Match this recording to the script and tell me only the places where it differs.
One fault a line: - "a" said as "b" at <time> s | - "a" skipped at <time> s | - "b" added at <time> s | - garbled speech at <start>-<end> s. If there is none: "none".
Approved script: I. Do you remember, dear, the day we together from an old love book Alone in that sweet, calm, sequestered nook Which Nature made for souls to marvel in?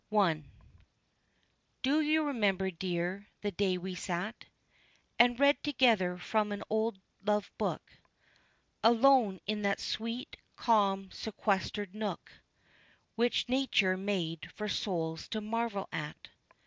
- "sat And read" added at 3.9 s
- "in" said as "at" at 15.9 s